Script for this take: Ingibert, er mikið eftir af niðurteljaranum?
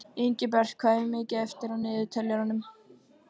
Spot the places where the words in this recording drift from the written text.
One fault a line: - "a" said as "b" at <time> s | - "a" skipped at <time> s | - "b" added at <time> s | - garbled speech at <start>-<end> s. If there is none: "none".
- "hvað" added at 0.8 s